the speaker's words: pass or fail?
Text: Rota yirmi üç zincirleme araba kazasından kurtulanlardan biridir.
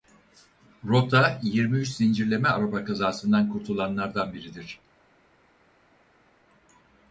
pass